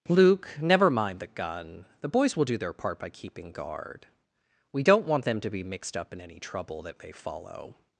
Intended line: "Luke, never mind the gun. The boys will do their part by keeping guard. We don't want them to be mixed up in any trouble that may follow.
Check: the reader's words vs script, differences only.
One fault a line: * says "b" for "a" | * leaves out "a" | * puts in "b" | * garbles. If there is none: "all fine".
all fine